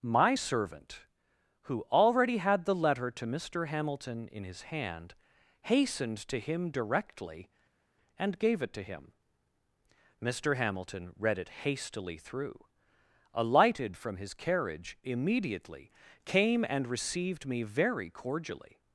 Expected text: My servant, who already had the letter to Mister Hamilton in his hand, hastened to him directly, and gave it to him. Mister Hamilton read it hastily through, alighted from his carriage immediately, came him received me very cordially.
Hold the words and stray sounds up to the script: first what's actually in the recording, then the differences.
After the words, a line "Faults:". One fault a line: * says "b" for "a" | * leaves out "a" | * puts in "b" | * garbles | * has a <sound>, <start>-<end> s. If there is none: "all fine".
My servant, who already had the letter to Mister Hamilton in his hand, hastened to him directly, and gave it to him. Mister Hamilton read it hastily through, alighted from his carriage immediately, came and received me very cordially.
Faults:
* says "and" for "him"